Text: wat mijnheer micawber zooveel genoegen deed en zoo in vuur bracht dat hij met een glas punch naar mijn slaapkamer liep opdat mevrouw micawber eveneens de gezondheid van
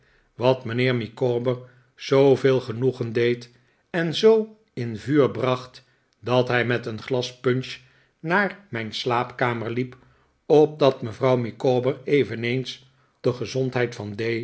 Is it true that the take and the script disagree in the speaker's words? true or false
false